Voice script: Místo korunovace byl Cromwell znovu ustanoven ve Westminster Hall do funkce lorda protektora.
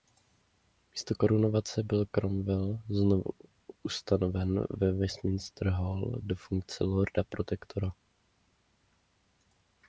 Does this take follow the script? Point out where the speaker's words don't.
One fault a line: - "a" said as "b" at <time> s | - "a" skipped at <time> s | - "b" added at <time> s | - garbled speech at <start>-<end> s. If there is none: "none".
none